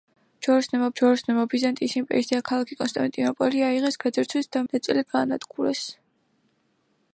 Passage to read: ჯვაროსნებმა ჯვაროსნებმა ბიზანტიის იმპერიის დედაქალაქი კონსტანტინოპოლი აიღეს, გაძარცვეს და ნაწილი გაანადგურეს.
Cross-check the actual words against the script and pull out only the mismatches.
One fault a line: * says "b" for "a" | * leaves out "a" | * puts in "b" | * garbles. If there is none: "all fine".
all fine